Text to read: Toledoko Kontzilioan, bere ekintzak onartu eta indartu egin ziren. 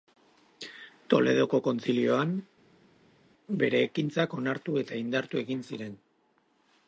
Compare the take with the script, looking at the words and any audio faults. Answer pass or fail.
pass